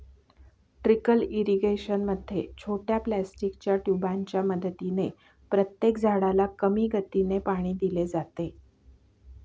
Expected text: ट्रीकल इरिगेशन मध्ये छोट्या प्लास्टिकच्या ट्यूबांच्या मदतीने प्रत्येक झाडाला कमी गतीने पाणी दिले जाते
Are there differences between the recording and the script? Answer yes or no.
no